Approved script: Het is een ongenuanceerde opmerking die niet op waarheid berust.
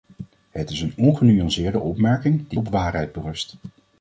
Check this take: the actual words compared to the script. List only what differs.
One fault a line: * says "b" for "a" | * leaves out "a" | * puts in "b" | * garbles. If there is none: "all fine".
* leaves out "niet"